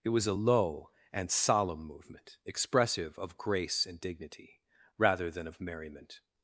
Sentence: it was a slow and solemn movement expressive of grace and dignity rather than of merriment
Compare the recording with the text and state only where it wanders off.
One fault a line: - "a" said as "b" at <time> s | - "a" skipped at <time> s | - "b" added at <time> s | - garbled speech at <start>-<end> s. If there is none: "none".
- "slow" said as "low" at 0.3 s